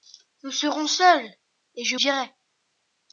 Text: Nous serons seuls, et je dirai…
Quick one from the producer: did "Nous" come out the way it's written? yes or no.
yes